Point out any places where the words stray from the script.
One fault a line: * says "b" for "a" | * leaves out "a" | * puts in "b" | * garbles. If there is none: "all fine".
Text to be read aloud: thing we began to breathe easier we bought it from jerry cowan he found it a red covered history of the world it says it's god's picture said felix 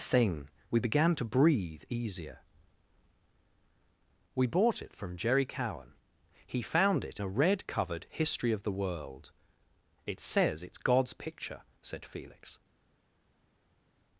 all fine